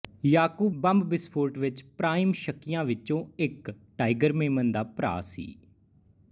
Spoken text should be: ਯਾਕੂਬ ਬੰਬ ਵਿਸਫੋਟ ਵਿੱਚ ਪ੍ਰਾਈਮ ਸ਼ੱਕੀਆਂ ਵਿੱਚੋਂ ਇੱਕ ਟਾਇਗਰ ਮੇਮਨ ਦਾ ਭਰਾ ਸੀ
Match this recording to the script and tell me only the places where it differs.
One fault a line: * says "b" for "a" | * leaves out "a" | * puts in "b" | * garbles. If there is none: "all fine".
all fine